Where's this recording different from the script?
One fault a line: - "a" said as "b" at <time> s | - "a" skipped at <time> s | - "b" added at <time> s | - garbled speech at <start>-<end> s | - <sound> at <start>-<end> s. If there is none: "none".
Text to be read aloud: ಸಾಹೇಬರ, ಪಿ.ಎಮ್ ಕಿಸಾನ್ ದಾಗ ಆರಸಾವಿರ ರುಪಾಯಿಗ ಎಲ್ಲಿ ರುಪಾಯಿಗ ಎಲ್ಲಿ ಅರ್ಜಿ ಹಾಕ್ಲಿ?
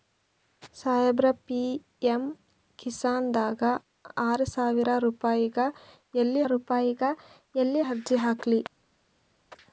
none